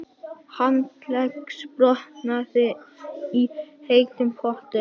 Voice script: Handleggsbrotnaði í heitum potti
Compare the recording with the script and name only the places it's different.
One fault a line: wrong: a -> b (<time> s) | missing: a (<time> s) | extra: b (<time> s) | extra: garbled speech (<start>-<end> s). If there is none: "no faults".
no faults